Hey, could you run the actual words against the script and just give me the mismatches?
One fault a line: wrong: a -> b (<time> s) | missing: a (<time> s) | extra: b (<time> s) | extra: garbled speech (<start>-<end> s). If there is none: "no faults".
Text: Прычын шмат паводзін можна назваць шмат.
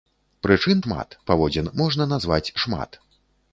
no faults